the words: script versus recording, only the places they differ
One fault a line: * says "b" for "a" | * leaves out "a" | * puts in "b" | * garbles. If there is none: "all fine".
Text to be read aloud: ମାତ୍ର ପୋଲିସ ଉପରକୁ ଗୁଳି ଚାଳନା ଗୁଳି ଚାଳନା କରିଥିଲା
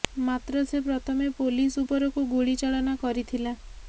* puts in "ସେ ପ୍ରଥମେ"
* leaves out "ଗୁଳି ଚାଳନା"